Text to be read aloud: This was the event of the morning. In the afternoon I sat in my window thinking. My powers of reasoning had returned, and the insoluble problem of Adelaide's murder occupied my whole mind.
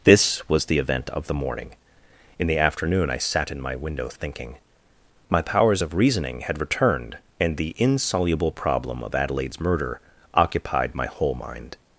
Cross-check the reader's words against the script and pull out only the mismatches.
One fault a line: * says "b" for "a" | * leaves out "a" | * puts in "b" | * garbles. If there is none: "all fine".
all fine